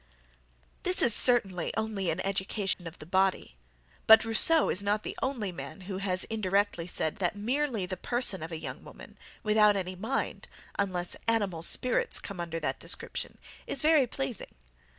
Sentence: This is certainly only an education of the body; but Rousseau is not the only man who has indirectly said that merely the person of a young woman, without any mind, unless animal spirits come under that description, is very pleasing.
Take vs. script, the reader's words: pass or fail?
pass